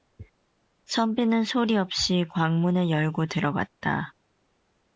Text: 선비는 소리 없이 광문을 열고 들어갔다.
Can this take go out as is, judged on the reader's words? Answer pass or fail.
pass